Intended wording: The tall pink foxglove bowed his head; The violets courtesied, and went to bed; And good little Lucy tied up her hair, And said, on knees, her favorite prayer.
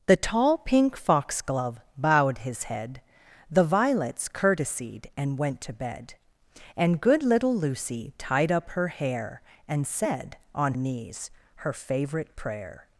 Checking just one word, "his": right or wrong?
right